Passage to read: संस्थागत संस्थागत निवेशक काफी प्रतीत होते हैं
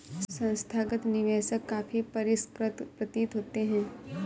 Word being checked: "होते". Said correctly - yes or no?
yes